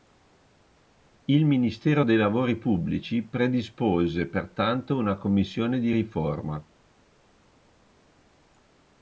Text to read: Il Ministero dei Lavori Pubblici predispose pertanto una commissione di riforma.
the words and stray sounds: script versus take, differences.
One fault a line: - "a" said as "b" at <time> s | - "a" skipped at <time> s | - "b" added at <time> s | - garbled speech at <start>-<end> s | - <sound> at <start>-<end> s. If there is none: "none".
none